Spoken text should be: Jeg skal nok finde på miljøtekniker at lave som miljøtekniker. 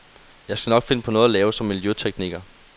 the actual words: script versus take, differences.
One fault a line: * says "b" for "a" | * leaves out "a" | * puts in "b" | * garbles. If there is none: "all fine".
* says "noget" for "miljøtekniker"